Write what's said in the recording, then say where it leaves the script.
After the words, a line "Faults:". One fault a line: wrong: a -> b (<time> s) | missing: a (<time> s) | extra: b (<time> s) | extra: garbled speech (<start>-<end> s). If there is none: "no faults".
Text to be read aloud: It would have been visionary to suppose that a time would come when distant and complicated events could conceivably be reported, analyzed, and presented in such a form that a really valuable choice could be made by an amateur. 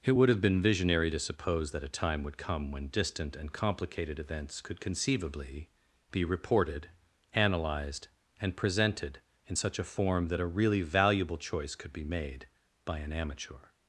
It would have been visionary to suppose that a time would come when distant and complicated events could conceivably be reported, analyzed, and presented in such a form that a really valuable choice could be made by an amateur.
Faults:
no faults